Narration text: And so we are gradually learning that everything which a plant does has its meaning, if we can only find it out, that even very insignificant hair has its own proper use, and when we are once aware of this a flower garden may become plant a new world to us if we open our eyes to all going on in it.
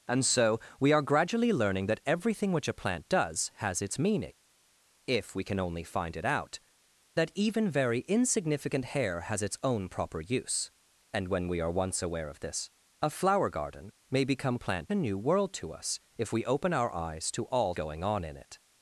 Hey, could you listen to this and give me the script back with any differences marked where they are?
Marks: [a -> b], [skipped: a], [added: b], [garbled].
And so we are gradually learning that everything which a plant does has its meaning, if we can only find it out, that even very insignificant hair has its own proper use, and when we are once aware of this a flower garden may become plant a new world to us if we open our eyes to all going on in it.